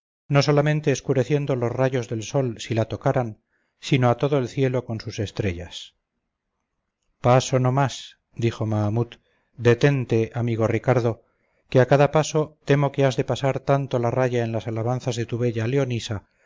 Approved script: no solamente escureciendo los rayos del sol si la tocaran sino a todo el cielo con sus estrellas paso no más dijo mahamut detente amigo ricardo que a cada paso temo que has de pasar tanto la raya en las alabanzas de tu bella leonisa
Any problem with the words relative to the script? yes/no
no